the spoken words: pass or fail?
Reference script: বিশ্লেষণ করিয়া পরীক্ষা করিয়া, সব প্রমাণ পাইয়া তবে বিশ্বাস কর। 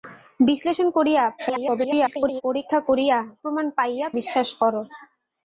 fail